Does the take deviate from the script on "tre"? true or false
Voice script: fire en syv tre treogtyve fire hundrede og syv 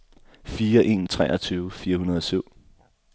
true